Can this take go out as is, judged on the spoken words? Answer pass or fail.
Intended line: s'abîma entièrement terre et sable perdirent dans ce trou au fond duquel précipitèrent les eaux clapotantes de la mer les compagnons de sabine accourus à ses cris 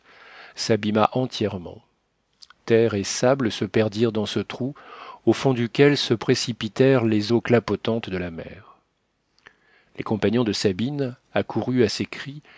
fail